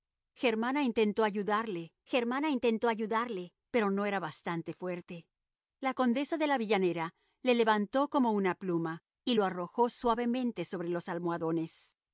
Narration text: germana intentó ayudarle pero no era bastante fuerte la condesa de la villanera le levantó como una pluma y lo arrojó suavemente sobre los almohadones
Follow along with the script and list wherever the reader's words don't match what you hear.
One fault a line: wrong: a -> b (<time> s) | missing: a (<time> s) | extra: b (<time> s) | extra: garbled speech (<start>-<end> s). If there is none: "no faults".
extra: germana intentó ayudarle (2.1 s)